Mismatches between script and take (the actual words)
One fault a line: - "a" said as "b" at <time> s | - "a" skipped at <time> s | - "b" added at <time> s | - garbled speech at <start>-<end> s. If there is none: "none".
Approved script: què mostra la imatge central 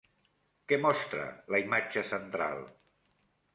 none